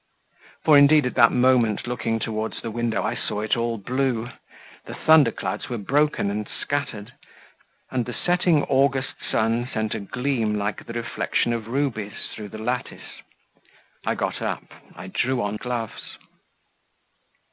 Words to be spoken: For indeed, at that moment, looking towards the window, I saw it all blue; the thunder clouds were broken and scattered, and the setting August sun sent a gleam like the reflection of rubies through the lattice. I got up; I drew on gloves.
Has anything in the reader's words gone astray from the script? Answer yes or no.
no